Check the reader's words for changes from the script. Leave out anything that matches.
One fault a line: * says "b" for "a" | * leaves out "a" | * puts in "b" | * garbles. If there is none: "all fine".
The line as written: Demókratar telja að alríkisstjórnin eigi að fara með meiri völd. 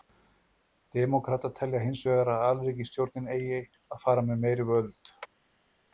* puts in "hins vegar"